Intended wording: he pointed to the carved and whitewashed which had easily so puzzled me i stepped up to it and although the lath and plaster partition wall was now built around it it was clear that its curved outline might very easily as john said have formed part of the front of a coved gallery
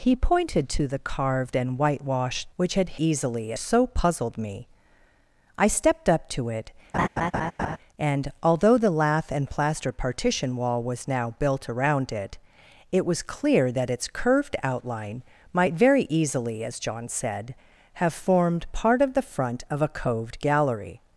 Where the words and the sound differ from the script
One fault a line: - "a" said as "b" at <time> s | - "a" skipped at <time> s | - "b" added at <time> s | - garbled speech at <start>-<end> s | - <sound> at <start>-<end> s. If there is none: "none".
- laugh at 6.9-7.8 s